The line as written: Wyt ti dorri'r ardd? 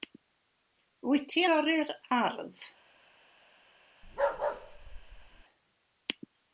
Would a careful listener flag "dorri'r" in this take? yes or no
no